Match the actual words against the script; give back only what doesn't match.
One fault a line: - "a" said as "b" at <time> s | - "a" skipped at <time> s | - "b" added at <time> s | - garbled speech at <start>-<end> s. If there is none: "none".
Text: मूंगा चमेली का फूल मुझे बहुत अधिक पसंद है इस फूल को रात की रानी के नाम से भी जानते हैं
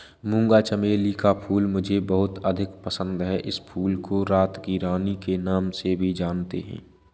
none